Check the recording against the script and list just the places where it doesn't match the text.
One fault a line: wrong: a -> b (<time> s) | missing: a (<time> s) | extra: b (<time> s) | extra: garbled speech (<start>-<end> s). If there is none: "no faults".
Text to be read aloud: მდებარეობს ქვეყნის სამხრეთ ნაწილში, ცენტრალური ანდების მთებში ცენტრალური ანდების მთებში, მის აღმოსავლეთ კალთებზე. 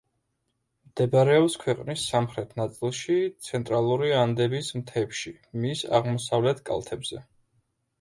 missing: ცენტრალური ანდების მთებში (5.4 s)